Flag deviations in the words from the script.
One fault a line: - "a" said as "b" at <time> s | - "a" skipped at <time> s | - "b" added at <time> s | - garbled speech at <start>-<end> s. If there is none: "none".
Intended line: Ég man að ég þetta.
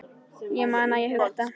none